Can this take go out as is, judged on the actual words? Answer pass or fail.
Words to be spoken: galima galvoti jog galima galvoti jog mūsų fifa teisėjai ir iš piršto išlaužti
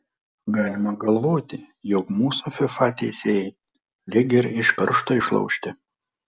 fail